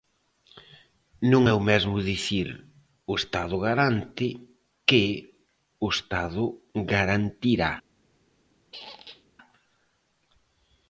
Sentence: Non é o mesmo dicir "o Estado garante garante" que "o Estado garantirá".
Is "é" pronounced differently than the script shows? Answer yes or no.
no